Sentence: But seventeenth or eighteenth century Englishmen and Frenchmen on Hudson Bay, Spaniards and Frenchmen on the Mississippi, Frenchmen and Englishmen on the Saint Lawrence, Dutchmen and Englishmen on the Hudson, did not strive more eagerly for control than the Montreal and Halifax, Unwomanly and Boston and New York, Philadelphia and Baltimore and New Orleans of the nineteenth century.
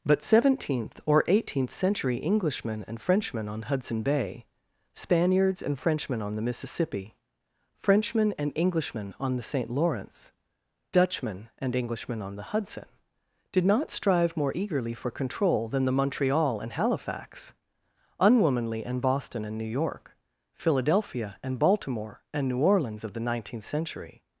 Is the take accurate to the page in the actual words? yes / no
yes